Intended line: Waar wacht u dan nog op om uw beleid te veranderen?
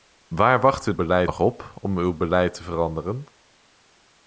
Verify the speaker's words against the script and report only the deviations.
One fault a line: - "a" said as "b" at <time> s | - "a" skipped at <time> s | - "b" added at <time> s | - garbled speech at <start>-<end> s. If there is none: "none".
- "dan" said as "beleid" at 0.9 s